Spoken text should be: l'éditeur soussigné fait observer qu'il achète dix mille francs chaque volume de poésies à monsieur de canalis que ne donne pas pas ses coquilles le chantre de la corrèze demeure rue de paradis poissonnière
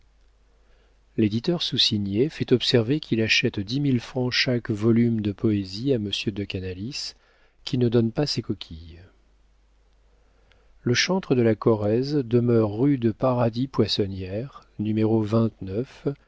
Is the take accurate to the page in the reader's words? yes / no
no